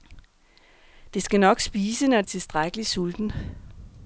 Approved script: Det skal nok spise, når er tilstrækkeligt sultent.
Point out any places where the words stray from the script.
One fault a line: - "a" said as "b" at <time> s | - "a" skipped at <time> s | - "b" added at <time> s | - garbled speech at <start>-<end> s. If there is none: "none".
none